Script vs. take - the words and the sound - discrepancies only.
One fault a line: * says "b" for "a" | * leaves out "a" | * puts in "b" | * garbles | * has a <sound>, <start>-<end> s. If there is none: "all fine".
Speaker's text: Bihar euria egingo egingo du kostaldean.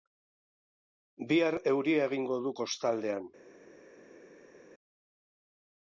* leaves out "egingo"